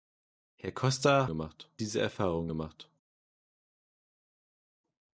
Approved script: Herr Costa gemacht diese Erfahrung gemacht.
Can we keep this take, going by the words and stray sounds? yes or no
yes